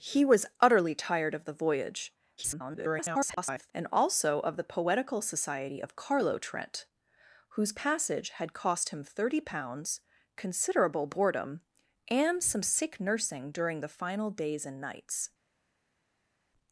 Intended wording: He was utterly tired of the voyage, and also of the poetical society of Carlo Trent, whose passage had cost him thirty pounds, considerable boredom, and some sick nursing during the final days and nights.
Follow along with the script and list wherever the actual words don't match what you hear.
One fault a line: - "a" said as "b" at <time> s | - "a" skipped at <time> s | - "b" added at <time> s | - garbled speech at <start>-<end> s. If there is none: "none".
- garbled speech at 2.4-3.7 s